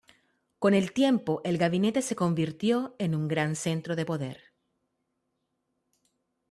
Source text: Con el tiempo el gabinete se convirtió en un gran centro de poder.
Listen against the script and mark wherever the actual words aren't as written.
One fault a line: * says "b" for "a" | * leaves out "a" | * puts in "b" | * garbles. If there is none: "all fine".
all fine